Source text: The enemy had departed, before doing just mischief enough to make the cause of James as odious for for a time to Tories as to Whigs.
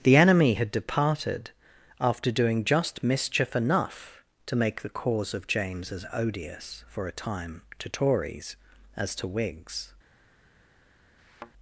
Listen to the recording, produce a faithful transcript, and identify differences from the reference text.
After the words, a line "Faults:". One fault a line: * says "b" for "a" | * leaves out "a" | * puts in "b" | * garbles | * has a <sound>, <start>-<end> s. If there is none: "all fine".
The enemy had departed, after doing just mischief enough to make the cause of James as odious for a time to Tories as to Whigs.
Faults:
* says "after" for "before"
* leaves out "for"
* has a thud, 11.2-11.5 s